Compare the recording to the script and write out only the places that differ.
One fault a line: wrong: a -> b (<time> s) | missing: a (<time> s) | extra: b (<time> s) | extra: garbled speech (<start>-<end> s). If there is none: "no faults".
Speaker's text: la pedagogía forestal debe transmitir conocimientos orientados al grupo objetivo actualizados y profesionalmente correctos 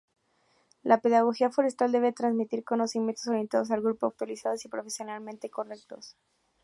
missing: objetivo (4.1 s)